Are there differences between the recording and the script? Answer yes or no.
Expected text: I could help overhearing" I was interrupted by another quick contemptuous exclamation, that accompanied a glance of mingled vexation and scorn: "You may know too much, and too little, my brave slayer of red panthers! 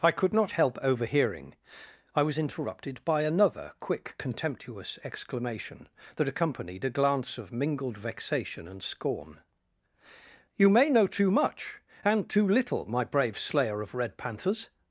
yes